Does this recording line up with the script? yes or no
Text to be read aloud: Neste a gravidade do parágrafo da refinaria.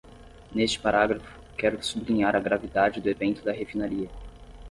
no